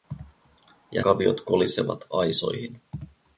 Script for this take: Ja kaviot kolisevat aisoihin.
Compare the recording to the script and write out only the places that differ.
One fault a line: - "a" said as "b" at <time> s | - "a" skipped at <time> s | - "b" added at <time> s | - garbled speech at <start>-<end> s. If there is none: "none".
none